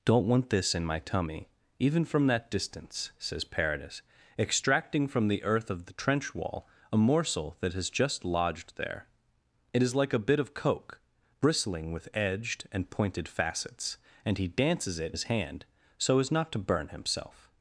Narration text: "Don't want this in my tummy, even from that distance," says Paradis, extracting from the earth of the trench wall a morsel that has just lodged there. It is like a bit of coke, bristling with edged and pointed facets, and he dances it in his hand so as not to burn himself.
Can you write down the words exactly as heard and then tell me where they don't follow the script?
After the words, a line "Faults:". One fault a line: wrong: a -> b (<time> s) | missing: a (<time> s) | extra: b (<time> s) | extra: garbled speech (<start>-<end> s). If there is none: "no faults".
"Don't want this in my tummy, even from that distance," says Paradis, extracting from the earth of the trench wall a morsel that has just lodged there. It is like a bit of coke, bristling with edged and pointed facets, and he dances it his hand so as not to burn himself.
Faults:
missing: in (15.2 s)